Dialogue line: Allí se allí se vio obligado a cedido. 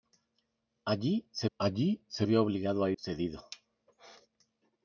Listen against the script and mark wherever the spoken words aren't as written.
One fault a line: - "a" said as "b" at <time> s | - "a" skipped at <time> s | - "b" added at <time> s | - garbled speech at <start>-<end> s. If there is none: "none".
none